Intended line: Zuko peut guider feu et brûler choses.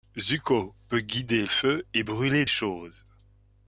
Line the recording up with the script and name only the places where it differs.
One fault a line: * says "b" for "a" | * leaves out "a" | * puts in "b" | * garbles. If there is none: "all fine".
all fine